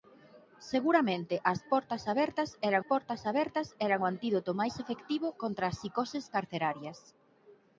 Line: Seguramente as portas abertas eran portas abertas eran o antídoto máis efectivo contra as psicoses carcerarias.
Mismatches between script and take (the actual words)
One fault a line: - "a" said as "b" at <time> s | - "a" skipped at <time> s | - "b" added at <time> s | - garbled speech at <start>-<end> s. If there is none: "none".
none